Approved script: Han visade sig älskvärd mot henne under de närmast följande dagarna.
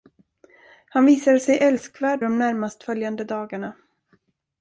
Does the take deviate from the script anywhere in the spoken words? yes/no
yes